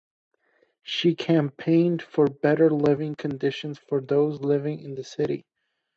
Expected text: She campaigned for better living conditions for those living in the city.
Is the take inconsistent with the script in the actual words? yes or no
no